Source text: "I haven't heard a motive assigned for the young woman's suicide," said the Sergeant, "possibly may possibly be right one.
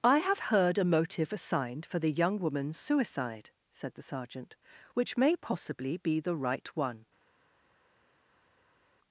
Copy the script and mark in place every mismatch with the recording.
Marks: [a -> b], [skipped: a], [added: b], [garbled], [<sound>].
"I [haven't -> have] heard a motive assigned for the young woman's suicide," said the Sergeant, ["possibly -> which] may possibly be [added: the] right one.